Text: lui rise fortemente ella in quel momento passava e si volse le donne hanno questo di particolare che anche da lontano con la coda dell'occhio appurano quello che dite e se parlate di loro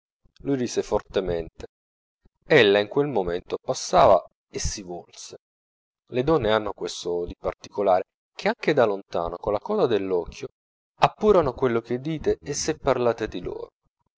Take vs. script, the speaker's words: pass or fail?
pass